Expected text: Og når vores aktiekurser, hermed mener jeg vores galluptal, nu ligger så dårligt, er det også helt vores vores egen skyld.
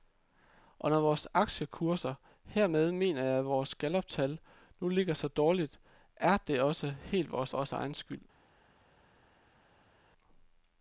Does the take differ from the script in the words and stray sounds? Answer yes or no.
no